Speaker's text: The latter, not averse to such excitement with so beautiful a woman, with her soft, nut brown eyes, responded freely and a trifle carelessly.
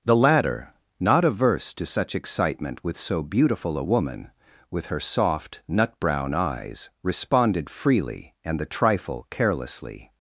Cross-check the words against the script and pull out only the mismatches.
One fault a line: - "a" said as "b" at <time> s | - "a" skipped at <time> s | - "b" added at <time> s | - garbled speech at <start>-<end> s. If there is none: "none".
- "a" said as "the" at 8.6 s